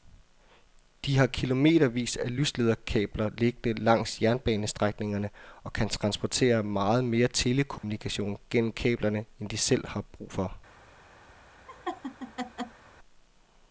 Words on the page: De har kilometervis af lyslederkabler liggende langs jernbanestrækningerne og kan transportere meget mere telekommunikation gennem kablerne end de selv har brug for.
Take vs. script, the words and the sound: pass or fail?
fail